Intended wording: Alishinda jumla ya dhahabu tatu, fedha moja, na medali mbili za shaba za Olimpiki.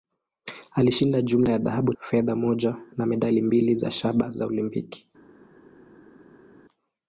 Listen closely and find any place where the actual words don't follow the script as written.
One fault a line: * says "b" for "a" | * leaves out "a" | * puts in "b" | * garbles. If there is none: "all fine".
* leaves out "tatu"